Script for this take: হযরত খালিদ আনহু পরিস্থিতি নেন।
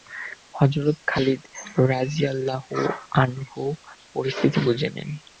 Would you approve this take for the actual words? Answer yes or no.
no